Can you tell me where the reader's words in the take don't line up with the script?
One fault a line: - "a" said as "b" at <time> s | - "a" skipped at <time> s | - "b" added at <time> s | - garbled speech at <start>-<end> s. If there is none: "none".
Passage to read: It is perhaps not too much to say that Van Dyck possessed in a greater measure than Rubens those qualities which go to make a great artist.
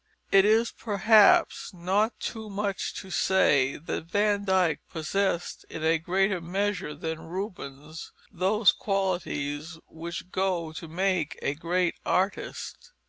none